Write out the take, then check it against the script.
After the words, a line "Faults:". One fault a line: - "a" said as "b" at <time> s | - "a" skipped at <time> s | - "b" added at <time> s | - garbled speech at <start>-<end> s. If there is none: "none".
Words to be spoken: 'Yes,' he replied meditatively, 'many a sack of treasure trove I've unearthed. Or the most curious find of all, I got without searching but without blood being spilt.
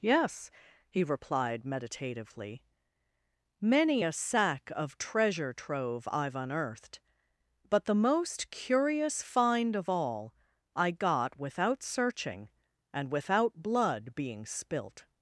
'Yes,' he replied meditatively, 'many a sack of treasure trove I've unearthed. But the most curious find of all, I got without searching and without blood being spilt.
Faults:
- "Or" said as "But" at 7.7 s
- "but" said as "and" at 12.9 s